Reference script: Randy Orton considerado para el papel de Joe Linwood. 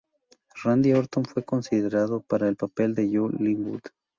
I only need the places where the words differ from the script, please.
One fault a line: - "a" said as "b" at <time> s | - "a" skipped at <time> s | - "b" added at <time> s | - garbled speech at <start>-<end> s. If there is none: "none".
- "fue" added at 1.2 s